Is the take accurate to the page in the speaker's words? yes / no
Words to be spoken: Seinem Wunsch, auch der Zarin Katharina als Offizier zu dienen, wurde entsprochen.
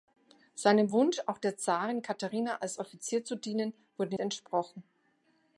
yes